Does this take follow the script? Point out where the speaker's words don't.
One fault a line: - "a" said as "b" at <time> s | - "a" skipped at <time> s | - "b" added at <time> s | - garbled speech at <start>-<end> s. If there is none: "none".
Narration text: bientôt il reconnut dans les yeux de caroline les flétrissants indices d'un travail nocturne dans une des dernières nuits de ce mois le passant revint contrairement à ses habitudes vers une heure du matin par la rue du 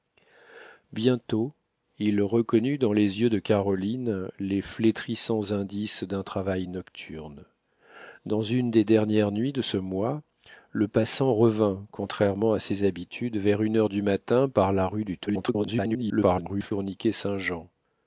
- garbled speech at 15.3-16.7 s